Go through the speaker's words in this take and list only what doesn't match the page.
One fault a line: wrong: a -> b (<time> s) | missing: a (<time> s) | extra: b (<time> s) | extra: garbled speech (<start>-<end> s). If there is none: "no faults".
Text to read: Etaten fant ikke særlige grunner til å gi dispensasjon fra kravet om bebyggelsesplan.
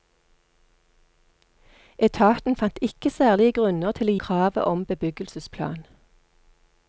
missing: gi dispensasjon fra (4.2 s)